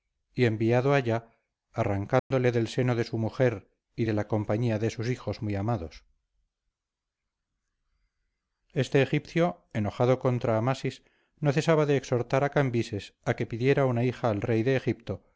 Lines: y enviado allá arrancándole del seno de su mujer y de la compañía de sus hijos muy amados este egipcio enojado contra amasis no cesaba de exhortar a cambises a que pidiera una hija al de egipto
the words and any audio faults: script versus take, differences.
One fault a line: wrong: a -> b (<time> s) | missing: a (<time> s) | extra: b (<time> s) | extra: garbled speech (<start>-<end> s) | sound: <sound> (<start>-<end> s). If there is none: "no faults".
sound: dropout (2.2-2.3 s)
extra: rey (14.4 s)